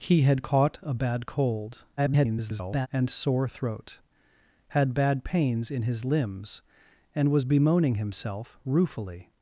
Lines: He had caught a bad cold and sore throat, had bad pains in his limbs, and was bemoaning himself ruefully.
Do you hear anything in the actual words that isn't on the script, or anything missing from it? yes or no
yes